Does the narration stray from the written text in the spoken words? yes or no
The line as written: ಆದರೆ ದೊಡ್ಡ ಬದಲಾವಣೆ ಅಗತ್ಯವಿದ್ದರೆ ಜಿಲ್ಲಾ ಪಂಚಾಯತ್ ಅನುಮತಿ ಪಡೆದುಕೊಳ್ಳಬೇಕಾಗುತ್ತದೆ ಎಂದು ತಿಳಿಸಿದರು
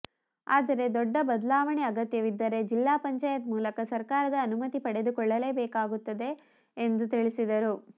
yes